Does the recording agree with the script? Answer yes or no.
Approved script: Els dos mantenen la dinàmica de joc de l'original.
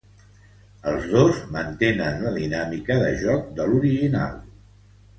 yes